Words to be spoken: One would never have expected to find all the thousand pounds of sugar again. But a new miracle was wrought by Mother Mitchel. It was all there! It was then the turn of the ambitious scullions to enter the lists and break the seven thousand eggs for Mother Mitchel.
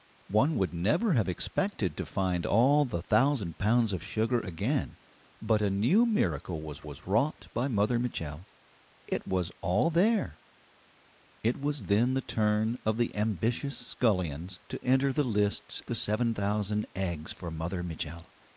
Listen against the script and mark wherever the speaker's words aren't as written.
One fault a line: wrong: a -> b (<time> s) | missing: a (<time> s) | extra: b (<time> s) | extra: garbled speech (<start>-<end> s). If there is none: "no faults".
extra: was (6.8 s)
missing: and break (15.8 s)